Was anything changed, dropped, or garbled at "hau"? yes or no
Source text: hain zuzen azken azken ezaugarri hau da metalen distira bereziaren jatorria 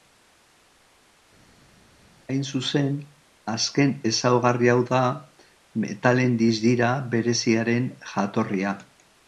no